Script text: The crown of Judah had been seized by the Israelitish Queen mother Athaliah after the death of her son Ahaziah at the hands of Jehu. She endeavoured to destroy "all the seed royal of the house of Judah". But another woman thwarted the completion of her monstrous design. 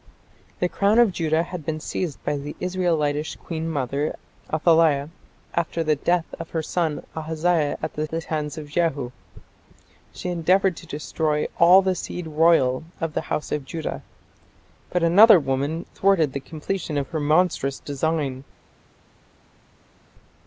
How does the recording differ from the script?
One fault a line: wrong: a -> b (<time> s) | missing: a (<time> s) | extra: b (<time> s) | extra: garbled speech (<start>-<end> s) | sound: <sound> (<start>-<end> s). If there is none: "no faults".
extra: the (8.1 s)